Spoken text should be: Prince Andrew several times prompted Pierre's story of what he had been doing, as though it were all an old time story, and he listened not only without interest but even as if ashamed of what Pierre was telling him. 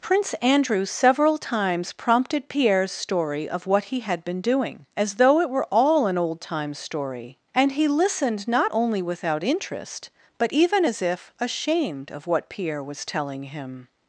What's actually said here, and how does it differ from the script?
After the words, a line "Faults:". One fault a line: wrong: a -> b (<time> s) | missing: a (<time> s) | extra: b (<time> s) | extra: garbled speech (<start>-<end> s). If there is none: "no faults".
Prince Andrew several times prompted Pierre's story of what he had been doing, as though it were all an old time story, and he listened not only without interest but even as if ashamed of what Pierre was telling him.
Faults:
no faults